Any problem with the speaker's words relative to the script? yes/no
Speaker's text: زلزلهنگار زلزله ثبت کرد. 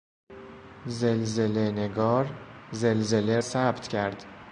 no